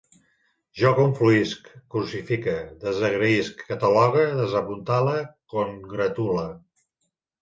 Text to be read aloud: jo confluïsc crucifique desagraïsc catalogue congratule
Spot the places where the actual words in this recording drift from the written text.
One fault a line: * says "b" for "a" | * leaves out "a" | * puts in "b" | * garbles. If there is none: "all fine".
* puts in "desapuntale"